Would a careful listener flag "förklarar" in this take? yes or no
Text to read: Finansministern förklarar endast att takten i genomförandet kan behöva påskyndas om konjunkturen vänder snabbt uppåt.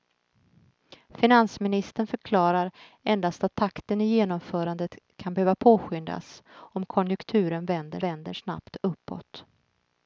no